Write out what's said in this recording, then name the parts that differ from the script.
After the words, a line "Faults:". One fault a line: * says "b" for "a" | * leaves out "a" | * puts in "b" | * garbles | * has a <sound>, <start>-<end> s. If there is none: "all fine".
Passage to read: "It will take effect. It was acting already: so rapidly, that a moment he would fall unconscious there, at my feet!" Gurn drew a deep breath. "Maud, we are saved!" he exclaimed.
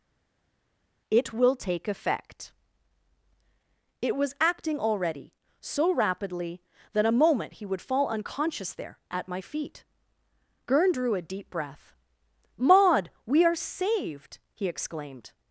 "It will take effect. It was acting already: so rapidly, that a moment he would fall unconscious there, at my feet!" Gurn drew a deep breath. "Maud, we are saved!" he exclaimed.
Faults:
all fine